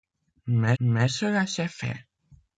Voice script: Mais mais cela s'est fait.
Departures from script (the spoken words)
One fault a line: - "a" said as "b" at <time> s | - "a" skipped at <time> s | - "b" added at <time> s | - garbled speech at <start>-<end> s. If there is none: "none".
none